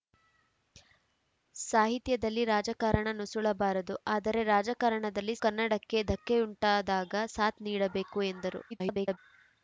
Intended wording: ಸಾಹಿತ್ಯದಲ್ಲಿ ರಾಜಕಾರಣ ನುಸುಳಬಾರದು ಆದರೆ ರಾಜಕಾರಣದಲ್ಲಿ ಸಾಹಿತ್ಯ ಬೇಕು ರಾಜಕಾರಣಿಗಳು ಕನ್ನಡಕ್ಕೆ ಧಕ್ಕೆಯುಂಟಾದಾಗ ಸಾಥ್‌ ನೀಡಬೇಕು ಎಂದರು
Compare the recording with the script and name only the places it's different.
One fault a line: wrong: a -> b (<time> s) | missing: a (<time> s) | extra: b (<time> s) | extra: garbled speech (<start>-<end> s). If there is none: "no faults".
missing: ಸಾಹಿತ್ಯ ಬೇಕು ರಾಜಕಾರಣಿಗಳು (5.3 s)
extra: garbled speech (8.7-9.2 s)